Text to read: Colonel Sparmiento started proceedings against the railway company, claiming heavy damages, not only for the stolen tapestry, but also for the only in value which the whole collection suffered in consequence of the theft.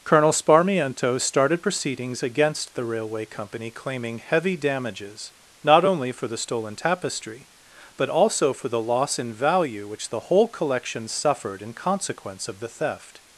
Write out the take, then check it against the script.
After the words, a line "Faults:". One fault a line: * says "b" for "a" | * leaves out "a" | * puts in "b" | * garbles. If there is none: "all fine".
Colonel Sparmiento started proceedings against the railway company, claiming heavy damages, not only for the stolen tapestry, but also for the loss in value which the whole collection suffered in consequence of the theft.
Faults:
* says "loss" for "only"